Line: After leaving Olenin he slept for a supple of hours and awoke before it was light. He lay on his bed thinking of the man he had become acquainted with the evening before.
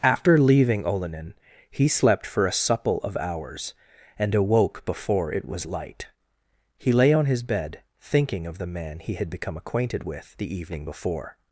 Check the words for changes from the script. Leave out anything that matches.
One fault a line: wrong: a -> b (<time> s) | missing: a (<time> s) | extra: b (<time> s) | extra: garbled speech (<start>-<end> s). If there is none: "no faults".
no faults